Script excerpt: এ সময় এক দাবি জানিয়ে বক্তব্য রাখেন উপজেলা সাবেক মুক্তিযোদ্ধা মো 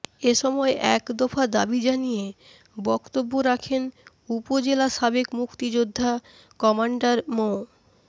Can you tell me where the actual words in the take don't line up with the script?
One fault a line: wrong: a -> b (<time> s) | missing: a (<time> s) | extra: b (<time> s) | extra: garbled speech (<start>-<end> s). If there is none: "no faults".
extra: দফা (1.2 s)
extra: কমান্ডার (6.6 s)